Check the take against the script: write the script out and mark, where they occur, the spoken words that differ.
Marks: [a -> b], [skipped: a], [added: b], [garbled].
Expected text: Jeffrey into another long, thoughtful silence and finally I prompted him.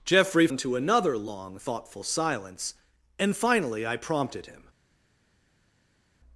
Jeffrey into another long, thoughtful silence and finally I prompted him.